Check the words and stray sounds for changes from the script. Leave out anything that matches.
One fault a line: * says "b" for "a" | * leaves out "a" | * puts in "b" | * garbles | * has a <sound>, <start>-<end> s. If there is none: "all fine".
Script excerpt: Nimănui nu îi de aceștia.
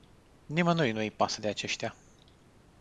* puts in "pasă"